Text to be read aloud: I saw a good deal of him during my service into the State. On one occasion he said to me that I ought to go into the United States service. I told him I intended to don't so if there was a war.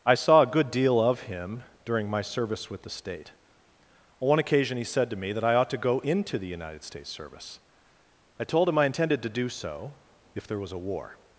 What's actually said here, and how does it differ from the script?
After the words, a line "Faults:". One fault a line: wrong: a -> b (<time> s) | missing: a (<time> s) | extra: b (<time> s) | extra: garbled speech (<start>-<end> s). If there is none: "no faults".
I saw a good deal of him during my service with the State. On one occasion he said to me that I ought to go into the United States service. I told him I intended to do so if there was a war.
Faults:
wrong: into -> with (2.7 s)
wrong: don't -> do (9.3 s)